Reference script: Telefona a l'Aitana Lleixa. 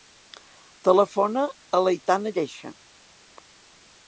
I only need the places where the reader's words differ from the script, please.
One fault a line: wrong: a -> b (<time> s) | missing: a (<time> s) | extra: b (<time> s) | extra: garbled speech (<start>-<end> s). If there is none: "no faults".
no faults